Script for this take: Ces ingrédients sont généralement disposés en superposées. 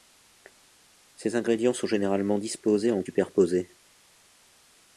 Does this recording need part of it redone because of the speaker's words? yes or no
no